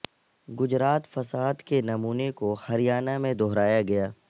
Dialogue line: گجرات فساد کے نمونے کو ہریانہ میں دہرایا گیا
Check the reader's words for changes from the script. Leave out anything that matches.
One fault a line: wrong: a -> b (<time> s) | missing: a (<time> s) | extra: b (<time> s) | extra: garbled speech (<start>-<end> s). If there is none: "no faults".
no faults